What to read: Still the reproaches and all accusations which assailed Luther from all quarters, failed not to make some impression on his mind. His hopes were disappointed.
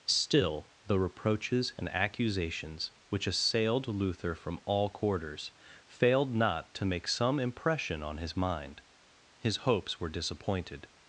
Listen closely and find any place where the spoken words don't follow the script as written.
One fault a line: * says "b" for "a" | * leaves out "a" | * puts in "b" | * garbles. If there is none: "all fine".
* leaves out "all"